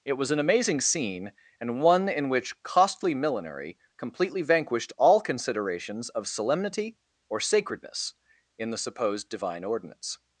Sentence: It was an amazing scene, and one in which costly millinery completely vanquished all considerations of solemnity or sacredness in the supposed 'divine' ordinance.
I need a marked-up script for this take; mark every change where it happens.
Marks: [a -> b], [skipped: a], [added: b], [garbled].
It was an amazing scene, and one in which costly millinery completely vanquished all considerations of solemnity or sacredness in the supposed 'divine' ordinance.